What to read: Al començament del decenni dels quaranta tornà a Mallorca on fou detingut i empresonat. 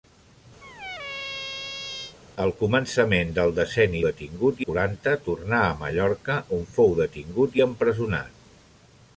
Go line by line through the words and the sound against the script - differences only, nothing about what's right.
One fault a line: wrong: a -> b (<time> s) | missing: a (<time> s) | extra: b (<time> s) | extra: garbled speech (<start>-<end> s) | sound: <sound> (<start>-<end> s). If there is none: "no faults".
sound: squeak (0.6-2.2 s)
wrong: dels -> detingut (4.1 s)